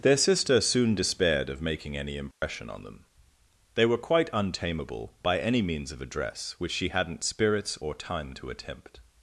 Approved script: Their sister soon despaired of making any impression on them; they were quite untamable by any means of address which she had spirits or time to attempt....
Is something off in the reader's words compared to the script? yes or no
yes